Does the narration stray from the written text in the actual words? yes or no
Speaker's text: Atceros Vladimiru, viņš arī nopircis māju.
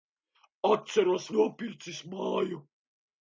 yes